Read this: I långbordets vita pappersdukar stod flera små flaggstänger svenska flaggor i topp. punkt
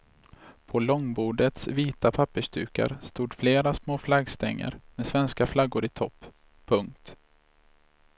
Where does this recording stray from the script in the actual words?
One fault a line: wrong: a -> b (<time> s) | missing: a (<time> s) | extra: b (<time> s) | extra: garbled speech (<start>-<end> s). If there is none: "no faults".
wrong: I -> På (0.7 s)
extra: med (4.9 s)